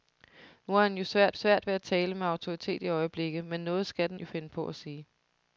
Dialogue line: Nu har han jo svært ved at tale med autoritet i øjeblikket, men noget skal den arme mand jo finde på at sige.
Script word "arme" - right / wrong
wrong